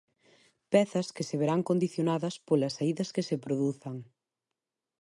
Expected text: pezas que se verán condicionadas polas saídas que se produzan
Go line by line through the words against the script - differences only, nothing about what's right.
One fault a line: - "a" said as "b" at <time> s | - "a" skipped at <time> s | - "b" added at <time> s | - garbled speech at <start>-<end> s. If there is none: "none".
none